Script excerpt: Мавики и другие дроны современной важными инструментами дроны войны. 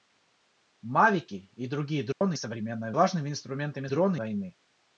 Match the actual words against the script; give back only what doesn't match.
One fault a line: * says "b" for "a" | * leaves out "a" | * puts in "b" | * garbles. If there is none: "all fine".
all fine